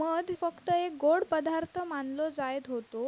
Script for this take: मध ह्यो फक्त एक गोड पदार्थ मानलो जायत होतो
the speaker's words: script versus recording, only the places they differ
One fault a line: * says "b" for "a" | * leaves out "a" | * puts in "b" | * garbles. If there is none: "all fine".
* leaves out "ह्यो"